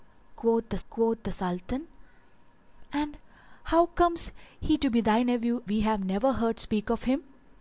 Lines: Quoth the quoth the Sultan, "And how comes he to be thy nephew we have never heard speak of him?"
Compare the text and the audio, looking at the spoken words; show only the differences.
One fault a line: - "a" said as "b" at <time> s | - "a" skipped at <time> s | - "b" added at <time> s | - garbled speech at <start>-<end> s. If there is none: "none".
none